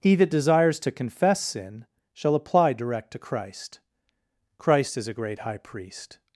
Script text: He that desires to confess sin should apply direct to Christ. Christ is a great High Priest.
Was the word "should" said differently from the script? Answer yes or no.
yes